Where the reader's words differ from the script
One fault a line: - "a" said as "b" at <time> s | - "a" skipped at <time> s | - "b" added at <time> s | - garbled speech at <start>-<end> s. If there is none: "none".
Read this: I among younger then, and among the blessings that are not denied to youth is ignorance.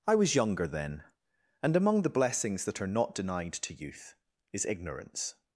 - "among" said as "was" at 0.1 s